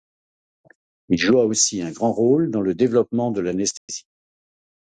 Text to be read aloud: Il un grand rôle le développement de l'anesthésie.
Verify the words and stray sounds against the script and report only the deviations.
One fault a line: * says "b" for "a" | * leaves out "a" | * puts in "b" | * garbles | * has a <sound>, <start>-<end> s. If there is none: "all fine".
* puts in "joua aussi"
* puts in "dans"
* has a dropout, 3.8-3.9 s